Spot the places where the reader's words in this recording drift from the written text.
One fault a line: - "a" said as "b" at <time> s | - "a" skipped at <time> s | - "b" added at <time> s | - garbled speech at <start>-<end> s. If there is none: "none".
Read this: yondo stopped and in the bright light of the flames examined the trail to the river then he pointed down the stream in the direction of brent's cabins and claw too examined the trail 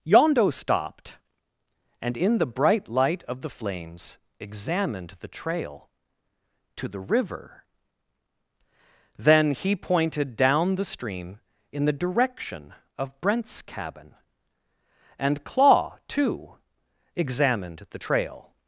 - "cabins" said as "cabin" at 13.6 s